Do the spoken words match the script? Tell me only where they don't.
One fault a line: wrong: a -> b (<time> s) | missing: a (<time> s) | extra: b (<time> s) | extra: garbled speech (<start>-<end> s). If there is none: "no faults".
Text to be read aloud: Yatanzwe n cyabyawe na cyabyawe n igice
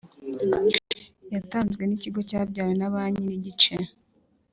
extra: ikigo (2.0 s)
wrong: cyabyawe -> banki (2.9 s)